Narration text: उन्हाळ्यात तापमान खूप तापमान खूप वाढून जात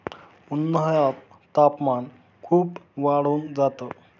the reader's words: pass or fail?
fail